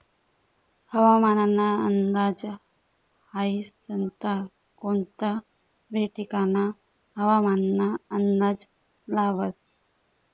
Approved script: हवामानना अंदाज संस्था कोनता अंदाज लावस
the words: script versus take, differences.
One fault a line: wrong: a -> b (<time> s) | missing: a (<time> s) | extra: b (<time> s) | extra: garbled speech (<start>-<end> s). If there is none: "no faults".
extra: हाई (3.3 s)
extra: बी ठिकानना हवामानना (5.9 s)